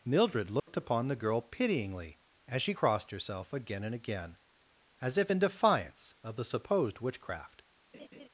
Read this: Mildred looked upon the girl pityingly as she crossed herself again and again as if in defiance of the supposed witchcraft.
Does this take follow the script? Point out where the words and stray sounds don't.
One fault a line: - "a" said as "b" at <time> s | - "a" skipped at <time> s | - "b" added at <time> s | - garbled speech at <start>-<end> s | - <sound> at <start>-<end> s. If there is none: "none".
- dropout at 0.6-0.7 s
- laugh at 7.9-8.3 s